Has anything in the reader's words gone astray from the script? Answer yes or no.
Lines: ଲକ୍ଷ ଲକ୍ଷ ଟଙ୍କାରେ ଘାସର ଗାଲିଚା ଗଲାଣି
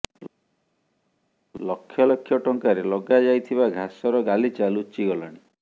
yes